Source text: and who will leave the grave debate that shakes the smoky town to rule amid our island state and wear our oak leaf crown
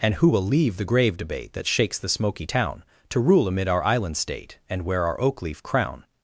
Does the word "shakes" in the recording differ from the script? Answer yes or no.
no